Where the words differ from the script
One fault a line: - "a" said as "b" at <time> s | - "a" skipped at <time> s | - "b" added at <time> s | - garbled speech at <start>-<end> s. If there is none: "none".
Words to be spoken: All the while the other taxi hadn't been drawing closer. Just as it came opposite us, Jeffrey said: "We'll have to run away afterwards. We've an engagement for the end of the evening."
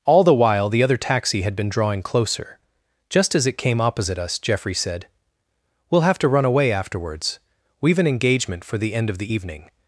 - "hadn't" said as "had" at 1.4 s